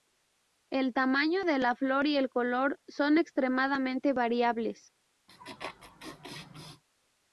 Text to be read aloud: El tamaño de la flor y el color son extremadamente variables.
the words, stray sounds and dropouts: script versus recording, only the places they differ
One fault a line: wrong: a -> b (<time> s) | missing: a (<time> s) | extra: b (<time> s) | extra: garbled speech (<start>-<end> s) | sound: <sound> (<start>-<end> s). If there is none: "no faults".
sound: laugh (5.3-6.8 s)